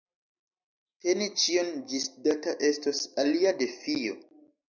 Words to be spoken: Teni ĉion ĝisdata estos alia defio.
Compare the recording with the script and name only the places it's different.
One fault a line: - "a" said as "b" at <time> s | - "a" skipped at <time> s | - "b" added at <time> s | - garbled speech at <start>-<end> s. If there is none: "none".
none